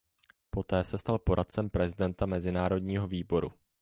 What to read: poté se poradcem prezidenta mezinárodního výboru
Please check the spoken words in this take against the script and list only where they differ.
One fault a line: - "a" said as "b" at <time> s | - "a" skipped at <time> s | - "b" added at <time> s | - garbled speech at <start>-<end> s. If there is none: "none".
- "stal" added at 1.0 s